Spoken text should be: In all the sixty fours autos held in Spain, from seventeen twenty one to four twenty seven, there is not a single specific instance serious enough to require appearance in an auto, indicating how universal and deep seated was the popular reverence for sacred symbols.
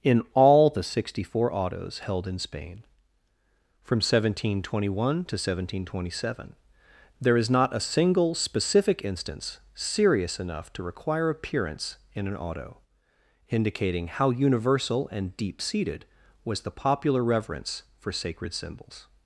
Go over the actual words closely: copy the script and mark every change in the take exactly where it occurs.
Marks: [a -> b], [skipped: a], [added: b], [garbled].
In all the sixty [fours -> four] autos held in Spain, from seventeen twenty one to [four -> seventeen] twenty seven, there is not a single specific instance serious enough to require appearance in an auto, indicating how universal and deep seated was the popular reverence for sacred symbols.